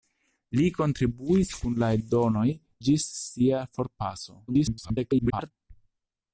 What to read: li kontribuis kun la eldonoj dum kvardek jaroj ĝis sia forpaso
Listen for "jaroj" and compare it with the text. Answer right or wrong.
wrong